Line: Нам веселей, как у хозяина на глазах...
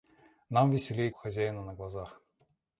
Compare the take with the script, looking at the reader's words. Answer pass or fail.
fail